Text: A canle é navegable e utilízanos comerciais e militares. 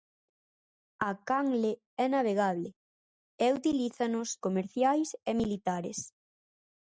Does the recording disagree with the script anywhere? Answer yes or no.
no